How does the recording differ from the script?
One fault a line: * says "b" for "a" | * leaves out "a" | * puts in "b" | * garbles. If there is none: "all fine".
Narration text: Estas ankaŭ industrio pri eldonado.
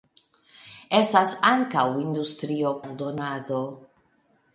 * leaves out "pri"